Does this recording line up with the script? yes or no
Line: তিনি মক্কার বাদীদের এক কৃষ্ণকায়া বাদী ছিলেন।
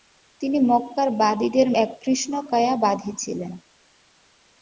yes